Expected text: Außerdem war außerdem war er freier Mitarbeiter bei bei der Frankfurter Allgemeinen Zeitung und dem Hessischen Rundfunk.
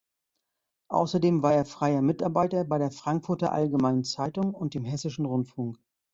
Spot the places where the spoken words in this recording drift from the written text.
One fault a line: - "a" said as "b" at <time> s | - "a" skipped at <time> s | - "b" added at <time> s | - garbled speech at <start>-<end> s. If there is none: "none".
- "außerdem war" skipped at 1.5 s
- "bei" skipped at 2.8 s